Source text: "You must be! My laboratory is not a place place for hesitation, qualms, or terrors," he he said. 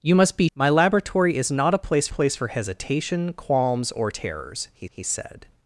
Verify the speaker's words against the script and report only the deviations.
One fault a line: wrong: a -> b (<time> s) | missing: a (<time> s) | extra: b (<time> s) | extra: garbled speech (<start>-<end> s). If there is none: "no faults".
no faults